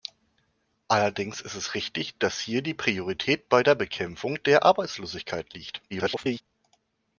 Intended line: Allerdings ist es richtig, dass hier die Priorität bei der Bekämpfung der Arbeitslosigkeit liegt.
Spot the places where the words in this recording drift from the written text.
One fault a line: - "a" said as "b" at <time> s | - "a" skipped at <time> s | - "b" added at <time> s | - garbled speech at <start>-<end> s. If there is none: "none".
- garbled speech at 5.9-6.4 s